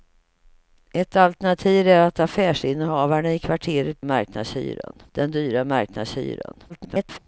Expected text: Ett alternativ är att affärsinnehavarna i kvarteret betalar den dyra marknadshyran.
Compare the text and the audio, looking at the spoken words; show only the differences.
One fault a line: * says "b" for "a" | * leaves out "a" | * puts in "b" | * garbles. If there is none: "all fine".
* says "marknadshyran" for "betalar"
* garbles